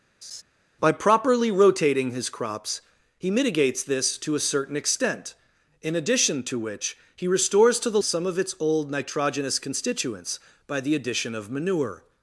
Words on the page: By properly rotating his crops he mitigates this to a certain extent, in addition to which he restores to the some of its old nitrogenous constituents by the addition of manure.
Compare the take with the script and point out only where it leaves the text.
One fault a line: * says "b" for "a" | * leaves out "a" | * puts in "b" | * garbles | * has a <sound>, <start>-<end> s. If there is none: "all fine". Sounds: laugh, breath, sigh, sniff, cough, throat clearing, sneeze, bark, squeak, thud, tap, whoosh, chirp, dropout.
* has a laugh, 0.2-0.4 s